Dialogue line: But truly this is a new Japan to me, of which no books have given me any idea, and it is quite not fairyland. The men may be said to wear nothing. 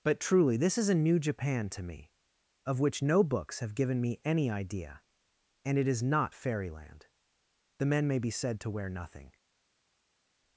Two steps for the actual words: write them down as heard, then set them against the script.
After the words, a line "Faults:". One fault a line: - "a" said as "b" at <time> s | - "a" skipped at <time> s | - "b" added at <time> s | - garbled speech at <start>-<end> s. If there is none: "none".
But truly this is a new Japan to me, of which no books have given me any idea, and it is not fairyland. The men may be said to wear nothing.
Faults:
- "quite" skipped at 6.0 s